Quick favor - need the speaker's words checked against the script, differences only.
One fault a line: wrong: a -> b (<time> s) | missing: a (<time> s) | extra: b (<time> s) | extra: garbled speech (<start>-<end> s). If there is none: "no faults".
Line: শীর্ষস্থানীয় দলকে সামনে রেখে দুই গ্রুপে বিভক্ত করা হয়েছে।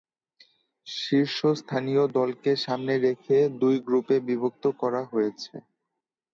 no faults